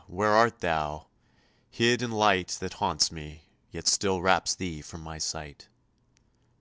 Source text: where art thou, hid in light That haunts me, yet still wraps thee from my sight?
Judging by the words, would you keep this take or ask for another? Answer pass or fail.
pass